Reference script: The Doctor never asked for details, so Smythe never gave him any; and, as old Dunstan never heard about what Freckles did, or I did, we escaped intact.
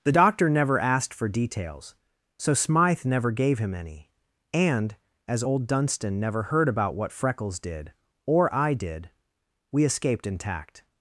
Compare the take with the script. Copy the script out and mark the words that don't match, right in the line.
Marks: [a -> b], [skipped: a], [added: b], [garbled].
The Doctor never asked for details, so Smythe never gave him any; and, as old Dunstan never heard about what Freckles did, or I did, we escaped intact.